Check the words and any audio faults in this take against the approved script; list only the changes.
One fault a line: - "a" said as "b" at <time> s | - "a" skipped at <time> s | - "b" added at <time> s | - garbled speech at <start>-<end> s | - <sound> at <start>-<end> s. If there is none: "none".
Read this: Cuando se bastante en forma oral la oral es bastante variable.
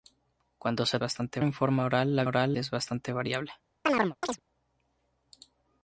- chirp at 3.8-4.4 s